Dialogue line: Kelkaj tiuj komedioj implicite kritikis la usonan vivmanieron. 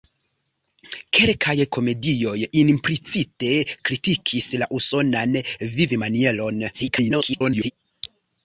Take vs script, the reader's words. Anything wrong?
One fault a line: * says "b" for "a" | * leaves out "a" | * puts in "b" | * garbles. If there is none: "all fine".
* leaves out "tiuj"
* garbles